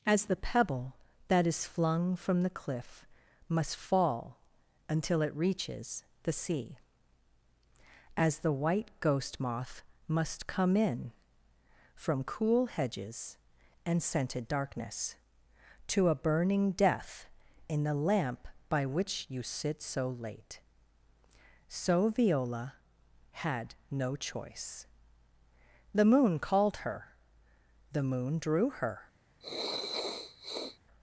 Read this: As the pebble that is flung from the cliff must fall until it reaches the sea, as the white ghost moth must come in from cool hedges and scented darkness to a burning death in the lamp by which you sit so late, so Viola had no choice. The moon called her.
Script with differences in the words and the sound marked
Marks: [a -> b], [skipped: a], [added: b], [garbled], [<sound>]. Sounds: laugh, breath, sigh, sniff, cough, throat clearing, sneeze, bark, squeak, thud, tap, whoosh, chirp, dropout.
As the pebble that is flung from the cliff must fall until it reaches the sea, as the white ghost moth must come in from cool hedges and scented darkness to a burning death in the lamp by which you sit so late, so Viola had no choice. The moon called her. [added: The moon drew her] [sniff]